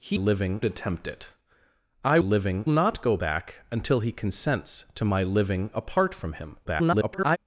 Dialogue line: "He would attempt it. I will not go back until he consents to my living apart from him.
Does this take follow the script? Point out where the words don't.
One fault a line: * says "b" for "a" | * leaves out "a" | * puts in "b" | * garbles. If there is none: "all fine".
* says "living" for "would"
* says "living" for "will"
* garbles